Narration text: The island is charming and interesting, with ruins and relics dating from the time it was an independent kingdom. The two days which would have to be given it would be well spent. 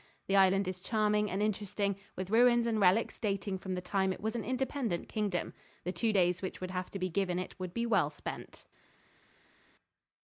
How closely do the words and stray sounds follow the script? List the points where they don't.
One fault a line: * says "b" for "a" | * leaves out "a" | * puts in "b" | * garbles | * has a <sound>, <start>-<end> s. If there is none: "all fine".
all fine